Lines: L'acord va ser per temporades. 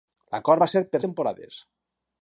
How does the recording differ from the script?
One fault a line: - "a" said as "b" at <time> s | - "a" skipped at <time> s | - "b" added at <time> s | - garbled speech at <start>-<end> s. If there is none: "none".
none